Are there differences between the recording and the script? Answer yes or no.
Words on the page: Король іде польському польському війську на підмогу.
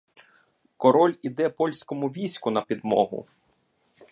yes